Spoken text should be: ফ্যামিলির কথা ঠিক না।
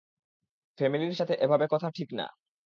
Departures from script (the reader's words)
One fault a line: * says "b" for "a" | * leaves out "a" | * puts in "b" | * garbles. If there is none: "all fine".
* puts in "সাথে এভাবে"